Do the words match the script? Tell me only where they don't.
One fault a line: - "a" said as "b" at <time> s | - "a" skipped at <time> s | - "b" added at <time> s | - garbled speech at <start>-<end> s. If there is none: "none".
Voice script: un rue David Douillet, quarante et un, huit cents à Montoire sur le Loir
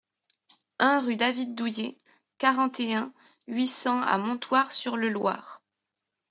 none